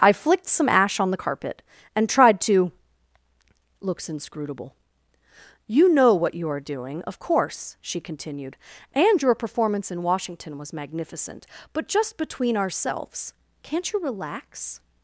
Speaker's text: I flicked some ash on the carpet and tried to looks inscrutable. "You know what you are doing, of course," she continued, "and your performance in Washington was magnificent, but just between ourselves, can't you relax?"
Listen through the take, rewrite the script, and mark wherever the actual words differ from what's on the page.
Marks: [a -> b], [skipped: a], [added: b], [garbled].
I flicked some ash on the carpet and tried to looks inscrutable. "You know what you are doing, of course," she continued, "and your performance in Washington was magnificent, but just between ourselves, can't you relax?"